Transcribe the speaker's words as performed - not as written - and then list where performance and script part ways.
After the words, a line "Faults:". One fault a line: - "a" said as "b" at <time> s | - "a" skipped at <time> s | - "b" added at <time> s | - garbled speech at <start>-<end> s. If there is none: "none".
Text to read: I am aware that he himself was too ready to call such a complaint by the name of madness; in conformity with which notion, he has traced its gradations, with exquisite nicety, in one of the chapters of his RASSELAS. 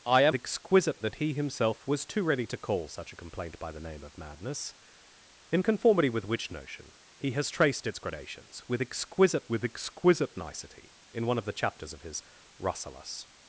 I am exquisite that he himself was too ready to call such a complaint by the name of madness; in conformity with which notion, he has traced its gradations, with exquisite with exquisite nicety, in one of the chapters of his RASSELAS.
Faults:
- "aware" said as "exquisite" at 0.3 s
- "with exquisite" added at 9.5 s